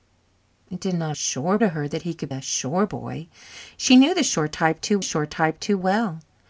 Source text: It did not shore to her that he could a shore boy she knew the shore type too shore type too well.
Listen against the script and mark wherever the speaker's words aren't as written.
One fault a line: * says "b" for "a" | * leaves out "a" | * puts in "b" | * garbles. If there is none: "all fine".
all fine